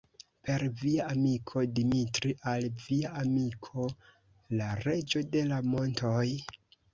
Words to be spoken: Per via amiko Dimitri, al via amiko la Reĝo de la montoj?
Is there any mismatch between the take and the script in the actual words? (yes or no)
no